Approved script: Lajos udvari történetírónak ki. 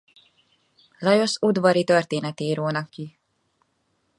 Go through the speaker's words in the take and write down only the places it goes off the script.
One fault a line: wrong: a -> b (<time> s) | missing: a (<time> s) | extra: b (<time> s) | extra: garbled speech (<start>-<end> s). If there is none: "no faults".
no faults